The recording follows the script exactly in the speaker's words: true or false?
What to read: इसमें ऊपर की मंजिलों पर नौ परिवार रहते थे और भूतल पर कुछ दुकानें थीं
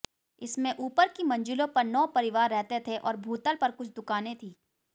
true